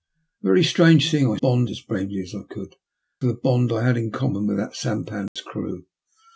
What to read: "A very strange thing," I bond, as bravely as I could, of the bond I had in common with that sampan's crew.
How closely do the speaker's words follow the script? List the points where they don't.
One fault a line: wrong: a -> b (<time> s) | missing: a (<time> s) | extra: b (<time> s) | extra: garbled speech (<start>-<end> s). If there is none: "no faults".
no faults